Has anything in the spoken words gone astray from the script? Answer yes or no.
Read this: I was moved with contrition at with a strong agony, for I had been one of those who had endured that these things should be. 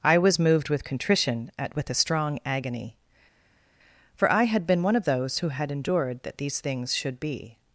no